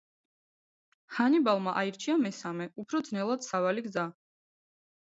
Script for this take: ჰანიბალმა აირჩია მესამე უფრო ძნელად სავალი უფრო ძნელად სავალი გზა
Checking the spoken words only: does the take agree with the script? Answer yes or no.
no